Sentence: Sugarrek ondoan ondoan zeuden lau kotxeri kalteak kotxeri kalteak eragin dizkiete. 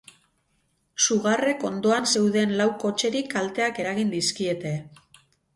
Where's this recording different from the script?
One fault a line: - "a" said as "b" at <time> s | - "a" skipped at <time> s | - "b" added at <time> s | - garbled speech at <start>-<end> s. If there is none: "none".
- "ondoan" skipped at 2.1 s
- "kotxeri kalteak" skipped at 3.8 s